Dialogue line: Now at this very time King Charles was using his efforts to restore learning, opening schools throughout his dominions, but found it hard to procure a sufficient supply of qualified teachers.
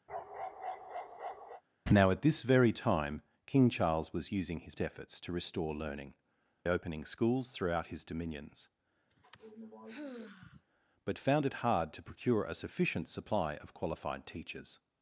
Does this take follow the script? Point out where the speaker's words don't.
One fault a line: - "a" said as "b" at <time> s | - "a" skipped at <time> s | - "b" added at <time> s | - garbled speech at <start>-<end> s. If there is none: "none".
none